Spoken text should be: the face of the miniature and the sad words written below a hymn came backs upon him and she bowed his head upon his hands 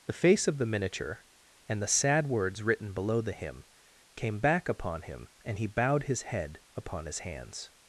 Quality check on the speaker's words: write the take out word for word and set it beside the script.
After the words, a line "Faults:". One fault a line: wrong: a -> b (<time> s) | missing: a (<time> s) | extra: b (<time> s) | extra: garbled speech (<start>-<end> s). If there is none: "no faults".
the face of the miniature and the sad words written below the hymn came back upon him and he bowed his head upon his hands
Faults:
wrong: a -> the (3.2 s)
wrong: backs -> back (4.4 s)
wrong: she -> he (5.6 s)